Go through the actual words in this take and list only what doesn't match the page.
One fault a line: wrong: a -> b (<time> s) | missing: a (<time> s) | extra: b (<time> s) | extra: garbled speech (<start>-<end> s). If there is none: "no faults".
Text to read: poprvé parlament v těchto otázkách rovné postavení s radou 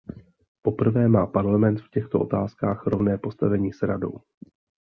extra: má (1.1 s)